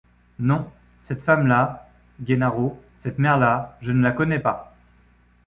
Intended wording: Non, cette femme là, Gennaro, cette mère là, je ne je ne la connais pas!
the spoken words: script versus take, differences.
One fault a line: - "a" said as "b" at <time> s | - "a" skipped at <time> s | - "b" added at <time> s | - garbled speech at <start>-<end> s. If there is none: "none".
- "je ne" skipped at 4.0 s